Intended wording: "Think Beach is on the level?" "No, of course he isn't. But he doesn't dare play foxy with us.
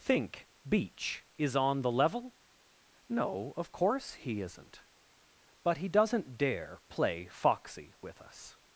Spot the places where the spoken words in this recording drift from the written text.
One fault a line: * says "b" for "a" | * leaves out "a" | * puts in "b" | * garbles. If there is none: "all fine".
all fine